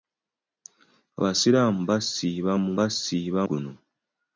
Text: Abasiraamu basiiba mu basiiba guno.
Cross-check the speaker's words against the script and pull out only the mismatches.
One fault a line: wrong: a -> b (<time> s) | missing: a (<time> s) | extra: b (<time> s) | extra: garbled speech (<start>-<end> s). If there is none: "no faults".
no faults